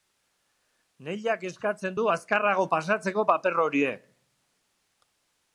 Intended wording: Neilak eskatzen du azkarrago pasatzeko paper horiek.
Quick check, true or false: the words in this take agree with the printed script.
true